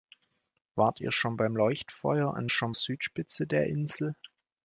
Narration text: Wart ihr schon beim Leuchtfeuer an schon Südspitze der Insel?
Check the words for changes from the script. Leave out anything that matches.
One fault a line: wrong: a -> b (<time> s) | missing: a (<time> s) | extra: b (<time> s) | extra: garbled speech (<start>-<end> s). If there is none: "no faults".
no faults